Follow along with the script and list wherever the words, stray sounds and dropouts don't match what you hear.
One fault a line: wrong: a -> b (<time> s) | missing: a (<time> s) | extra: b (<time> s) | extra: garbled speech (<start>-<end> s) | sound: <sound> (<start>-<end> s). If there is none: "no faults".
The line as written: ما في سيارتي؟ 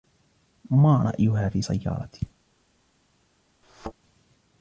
extra: رأيها (1.0 s)
sound: thud (3.6-3.9 s)